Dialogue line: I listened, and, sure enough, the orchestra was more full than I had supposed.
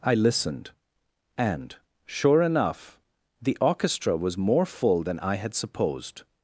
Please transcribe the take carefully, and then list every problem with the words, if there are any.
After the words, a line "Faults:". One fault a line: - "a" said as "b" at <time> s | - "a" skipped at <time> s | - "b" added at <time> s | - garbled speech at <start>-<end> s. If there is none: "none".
I listened, and, sure enough, the orchestra was more full than I had supposed.
Faults:
none